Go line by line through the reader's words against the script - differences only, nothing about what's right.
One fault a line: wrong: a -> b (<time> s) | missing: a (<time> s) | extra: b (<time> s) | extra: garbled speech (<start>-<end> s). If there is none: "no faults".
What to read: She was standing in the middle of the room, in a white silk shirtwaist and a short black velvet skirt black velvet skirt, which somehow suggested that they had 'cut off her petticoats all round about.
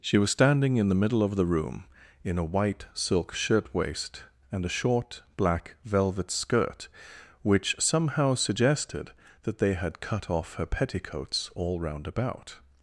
missing: black velvet skirt (6.9 s)